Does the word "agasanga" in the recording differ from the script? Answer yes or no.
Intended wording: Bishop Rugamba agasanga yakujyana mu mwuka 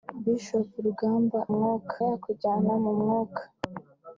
yes